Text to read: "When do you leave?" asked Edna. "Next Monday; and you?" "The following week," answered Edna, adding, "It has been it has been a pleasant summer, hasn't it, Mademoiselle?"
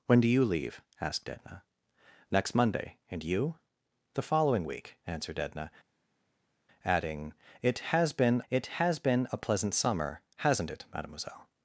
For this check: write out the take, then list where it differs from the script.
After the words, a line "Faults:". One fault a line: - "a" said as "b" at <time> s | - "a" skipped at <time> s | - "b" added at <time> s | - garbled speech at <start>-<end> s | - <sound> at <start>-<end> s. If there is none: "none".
"When do you leave?" asked Edna. "Next Monday; and you?" "The following week," answered Edna, adding, "It has been it has been a pleasant summer, hasn't it, Mademoiselle?"
Faults:
none